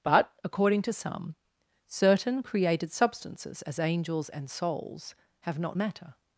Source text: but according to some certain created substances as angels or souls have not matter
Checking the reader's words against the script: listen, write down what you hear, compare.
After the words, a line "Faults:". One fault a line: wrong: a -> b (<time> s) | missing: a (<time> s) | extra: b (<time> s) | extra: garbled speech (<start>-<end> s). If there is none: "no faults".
but according to some certain created substances as angels and souls have not matter
Faults:
wrong: or -> and (4.3 s)